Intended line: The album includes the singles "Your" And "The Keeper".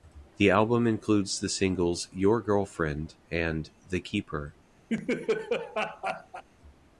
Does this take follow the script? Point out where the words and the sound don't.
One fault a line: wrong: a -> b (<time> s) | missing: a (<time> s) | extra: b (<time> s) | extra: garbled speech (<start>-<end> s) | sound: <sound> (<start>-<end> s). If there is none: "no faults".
extra: Girlfriend (2.4 s)
sound: laugh (4.9-6.4 s)